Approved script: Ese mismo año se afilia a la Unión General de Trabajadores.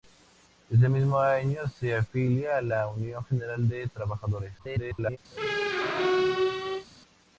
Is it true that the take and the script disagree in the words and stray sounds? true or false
true